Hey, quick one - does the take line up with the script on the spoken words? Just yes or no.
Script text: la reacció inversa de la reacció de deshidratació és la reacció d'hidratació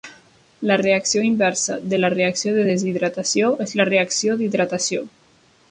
yes